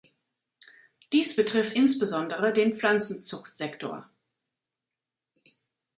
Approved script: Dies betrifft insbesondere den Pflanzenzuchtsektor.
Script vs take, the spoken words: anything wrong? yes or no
no